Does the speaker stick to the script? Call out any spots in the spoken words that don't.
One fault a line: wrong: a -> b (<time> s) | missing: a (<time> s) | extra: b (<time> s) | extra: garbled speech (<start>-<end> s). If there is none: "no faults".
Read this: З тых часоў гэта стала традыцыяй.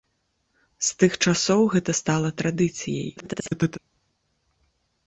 extra: garbled speech (3.2-3.8 s)